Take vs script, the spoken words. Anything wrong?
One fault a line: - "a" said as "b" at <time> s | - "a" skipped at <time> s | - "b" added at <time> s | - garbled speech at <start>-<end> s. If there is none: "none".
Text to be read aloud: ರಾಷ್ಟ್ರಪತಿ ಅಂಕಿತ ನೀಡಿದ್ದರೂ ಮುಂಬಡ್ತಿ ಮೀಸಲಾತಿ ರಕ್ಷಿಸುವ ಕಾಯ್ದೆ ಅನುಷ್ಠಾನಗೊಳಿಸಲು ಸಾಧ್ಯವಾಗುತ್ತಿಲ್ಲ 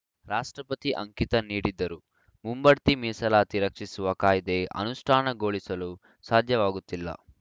none